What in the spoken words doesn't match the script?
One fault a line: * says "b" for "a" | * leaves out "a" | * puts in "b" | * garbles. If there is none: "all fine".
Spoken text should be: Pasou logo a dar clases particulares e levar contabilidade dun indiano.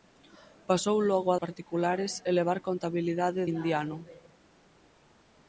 * leaves out "dar clases"
* leaves out "dun"